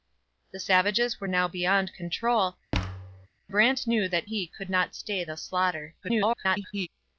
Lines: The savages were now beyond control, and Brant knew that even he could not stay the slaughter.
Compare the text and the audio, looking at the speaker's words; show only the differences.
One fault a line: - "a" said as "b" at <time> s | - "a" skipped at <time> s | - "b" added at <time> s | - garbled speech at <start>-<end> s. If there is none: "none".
- "and" skipped at 2.6 s
- "even" skipped at 4.3 s
- garbled speech at 6.0-6.9 s